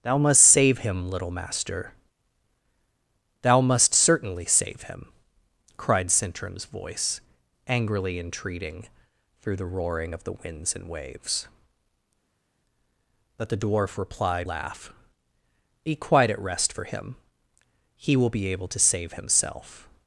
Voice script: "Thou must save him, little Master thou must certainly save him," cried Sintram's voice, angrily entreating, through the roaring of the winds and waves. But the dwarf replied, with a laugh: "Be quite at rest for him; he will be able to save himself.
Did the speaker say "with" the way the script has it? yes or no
no